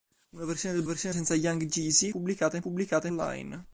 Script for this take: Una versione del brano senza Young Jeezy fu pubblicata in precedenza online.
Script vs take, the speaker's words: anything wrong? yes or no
yes